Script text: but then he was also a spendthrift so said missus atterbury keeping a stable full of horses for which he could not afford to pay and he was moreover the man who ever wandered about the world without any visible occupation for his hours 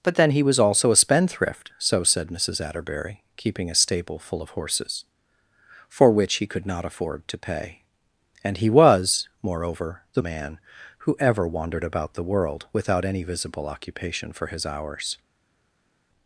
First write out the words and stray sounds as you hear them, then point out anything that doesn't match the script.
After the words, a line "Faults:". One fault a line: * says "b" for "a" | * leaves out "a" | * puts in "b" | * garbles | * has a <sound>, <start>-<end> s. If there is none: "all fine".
but then he was also a spendthrift so said missus atterbury keeping a stable full of horses for which he could not afford to pay and he was moreover the man who ever wandered about the world without any visible occupation for his hours
Faults:
all fine